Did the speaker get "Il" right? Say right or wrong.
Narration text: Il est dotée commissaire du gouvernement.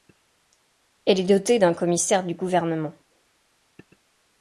wrong